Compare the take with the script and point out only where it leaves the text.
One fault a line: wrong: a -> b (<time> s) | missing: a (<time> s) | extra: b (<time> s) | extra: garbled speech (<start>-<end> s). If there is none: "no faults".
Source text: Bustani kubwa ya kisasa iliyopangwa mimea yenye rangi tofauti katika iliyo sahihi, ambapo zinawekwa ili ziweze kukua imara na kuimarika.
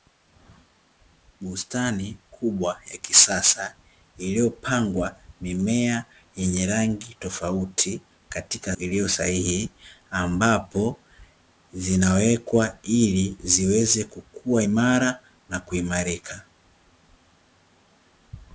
no faults